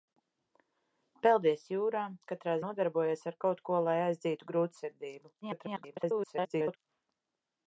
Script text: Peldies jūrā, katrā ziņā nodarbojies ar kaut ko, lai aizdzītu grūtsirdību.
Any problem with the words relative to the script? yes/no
yes